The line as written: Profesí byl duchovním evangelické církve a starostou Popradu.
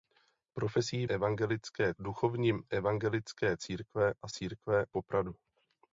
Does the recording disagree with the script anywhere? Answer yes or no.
yes